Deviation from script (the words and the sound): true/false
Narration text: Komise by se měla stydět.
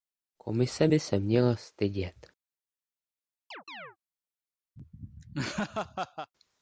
true